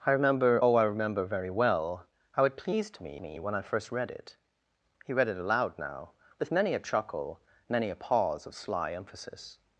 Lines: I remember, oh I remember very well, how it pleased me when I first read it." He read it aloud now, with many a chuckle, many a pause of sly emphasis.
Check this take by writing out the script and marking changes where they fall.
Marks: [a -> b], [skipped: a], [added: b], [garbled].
I remember, oh I remember very well, how it pleased me [added: me] when I first read it." He read it aloud now, with many a chuckle, many a pause of sly emphasis.